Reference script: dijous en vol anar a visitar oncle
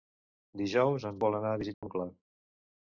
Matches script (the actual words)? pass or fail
pass